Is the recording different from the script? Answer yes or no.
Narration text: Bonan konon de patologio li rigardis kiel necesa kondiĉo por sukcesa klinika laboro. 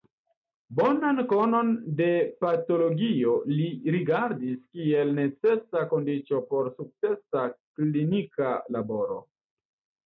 no